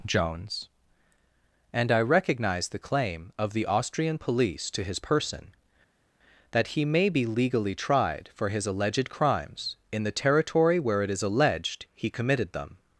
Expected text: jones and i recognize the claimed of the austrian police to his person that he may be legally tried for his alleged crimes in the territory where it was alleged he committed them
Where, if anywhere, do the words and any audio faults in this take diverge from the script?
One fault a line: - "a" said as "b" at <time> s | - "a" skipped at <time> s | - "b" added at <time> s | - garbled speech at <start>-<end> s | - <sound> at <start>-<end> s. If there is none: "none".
- "claimed" said as "claim" at 2.8 s
- "was" said as "is" at 11.1 s